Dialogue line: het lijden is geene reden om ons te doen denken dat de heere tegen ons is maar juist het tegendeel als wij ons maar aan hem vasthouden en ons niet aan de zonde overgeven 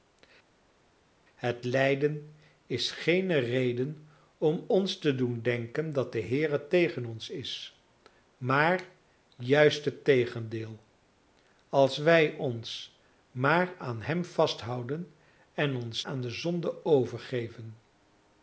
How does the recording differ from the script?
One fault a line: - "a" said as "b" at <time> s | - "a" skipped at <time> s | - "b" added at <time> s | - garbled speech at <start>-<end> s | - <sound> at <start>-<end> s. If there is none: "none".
- "niet" skipped at 16.0 s